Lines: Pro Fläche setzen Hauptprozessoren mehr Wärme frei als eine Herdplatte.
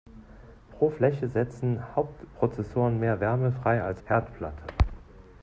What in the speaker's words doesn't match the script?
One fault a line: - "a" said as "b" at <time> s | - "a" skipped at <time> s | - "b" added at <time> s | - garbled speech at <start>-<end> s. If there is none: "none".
- "eine" skipped at 4.0 s